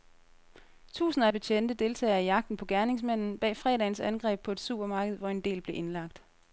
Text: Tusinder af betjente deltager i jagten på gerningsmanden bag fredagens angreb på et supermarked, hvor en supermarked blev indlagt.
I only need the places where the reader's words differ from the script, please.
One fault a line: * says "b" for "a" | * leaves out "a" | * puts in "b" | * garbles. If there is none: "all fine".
* says "del" for "supermarked"